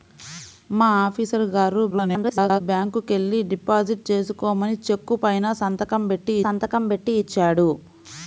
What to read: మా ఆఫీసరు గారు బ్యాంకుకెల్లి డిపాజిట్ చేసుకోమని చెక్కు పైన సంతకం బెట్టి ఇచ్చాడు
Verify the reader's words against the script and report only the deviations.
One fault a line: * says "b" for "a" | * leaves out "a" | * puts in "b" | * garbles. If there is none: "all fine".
* garbles
* puts in "సంతకం బెట్టి"